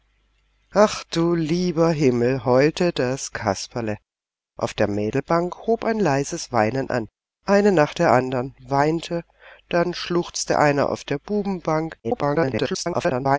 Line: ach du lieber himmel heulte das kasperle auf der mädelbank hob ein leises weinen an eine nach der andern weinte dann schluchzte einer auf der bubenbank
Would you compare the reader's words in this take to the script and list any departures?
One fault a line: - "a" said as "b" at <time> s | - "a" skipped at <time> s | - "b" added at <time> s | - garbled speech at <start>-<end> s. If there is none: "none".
- garbled speech at 12.0-13.4 s